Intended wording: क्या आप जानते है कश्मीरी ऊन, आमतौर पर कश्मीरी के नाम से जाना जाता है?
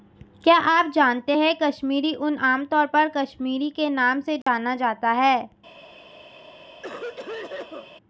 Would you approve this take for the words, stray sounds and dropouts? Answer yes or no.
no